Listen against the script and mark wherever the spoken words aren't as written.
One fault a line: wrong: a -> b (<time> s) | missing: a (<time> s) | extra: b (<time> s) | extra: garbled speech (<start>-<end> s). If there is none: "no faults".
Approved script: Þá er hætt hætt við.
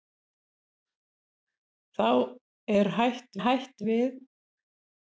no faults